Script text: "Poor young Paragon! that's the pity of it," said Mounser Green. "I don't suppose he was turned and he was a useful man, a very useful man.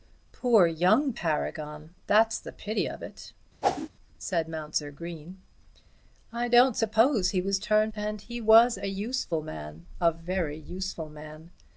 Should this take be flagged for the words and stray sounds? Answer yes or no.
yes